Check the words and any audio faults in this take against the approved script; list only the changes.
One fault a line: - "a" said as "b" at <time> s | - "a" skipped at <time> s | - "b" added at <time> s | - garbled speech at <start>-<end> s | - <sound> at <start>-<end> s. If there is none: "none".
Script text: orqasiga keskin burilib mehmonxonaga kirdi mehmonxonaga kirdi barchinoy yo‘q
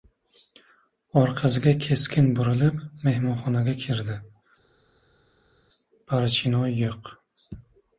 - "mehmonxonaga kirdi" skipped at 4.2 s